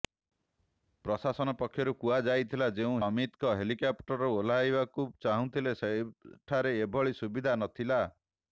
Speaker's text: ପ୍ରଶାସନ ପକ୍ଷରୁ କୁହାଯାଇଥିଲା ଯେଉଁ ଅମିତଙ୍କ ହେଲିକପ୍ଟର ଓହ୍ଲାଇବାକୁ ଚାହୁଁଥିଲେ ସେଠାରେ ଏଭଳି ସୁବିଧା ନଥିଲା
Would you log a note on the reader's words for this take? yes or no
no